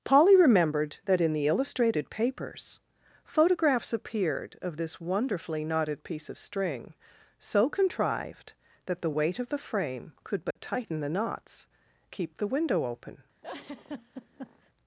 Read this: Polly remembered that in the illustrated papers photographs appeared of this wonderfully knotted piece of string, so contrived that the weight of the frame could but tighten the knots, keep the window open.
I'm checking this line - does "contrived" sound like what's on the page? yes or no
yes